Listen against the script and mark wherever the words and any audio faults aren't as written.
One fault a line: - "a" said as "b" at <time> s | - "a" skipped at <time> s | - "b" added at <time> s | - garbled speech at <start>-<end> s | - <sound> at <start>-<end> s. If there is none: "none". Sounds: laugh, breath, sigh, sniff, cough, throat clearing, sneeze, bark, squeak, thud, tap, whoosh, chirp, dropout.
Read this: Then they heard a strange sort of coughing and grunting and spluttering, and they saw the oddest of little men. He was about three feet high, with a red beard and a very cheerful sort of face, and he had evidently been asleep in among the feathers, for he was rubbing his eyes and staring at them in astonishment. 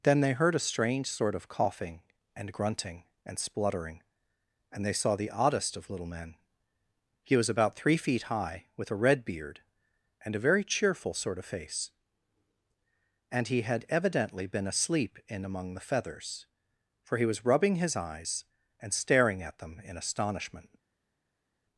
none